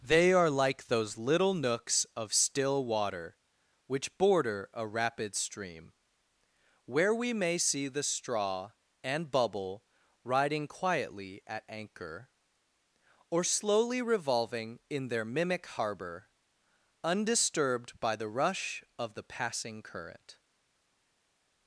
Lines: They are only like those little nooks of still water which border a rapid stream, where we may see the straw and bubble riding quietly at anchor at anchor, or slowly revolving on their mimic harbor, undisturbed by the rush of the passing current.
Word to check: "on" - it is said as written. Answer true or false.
false